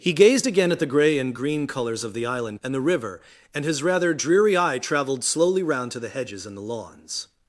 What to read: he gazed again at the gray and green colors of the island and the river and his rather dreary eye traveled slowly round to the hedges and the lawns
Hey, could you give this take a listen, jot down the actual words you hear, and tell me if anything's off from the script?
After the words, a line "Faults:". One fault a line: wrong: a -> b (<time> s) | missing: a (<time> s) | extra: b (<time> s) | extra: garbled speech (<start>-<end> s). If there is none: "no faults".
he gazed again at the gray and green colors of the island and the river and his rather dreary eye traveled slowly round to the hedges and the lawns
Faults:
no faults